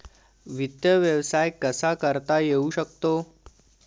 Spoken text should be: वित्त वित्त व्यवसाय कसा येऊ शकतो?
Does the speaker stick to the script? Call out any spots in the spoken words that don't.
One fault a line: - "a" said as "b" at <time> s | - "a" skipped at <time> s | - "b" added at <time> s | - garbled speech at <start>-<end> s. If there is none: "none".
- "वित्त" skipped at 0.8 s
- "करता" added at 1.9 s